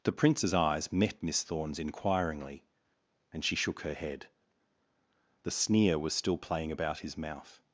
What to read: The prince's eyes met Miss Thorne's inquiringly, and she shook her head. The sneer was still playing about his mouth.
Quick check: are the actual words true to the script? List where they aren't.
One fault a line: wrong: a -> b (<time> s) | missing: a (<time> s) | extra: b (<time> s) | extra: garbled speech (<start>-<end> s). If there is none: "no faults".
no faults